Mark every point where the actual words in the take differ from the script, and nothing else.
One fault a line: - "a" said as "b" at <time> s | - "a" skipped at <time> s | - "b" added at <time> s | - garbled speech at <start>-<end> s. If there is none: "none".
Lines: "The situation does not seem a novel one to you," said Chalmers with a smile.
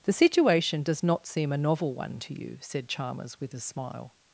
none